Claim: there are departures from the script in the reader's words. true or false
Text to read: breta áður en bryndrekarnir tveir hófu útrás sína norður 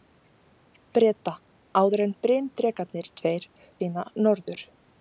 true